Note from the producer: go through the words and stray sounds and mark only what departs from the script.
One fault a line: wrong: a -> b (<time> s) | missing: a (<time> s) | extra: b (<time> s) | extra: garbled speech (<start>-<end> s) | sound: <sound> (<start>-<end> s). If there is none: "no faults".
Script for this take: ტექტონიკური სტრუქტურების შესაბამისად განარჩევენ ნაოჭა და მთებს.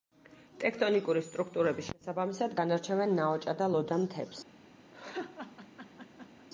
extra: ლოდა (3.7 s)
sound: laugh (4.9-6.5 s)